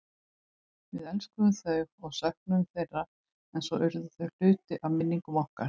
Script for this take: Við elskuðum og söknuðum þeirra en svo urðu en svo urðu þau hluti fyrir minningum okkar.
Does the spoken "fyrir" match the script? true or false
false